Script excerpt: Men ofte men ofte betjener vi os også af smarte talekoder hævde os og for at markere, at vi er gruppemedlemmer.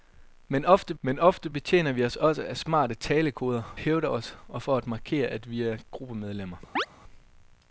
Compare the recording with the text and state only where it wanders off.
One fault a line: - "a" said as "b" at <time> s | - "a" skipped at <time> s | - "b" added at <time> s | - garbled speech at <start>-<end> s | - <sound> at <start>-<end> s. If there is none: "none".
- chirp at 6.8-6.9 s